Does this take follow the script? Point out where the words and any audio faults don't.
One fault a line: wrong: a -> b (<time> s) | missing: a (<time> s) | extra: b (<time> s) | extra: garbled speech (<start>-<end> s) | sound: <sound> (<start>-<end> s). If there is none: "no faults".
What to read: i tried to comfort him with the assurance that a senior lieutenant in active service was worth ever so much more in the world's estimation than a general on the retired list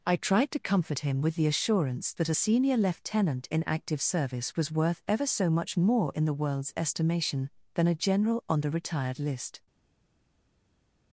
no faults